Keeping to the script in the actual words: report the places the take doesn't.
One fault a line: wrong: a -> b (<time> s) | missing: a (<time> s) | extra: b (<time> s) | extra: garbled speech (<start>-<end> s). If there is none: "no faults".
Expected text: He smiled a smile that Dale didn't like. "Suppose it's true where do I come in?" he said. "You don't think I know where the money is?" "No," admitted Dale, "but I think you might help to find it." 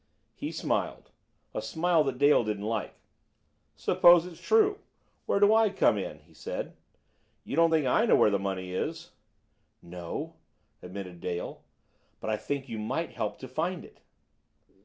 no faults